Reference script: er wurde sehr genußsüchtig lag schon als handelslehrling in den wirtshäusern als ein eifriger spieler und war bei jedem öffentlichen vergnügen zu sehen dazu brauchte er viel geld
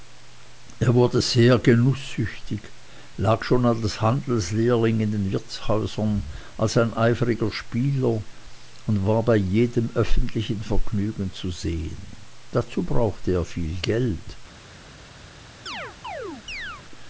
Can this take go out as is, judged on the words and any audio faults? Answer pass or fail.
fail